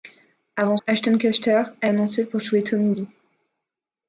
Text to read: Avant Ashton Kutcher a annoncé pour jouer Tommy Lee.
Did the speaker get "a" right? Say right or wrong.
right